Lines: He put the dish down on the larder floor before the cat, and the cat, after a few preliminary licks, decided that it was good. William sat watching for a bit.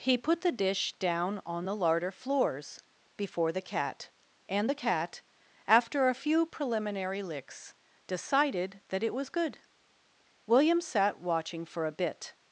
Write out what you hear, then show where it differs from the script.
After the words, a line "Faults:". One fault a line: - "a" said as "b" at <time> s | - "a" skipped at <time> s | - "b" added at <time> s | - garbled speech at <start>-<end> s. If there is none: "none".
He put the dish down on the larder floors before the cat, and the cat, after a few preliminary licks, decided that it was good. William sat watching for a bit.
Faults:
- "floor" said as "floors" at 2.1 s